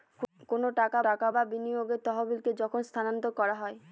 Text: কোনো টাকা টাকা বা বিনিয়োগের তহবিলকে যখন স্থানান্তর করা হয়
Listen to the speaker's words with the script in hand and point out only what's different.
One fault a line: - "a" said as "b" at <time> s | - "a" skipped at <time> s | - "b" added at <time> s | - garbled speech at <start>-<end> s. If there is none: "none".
none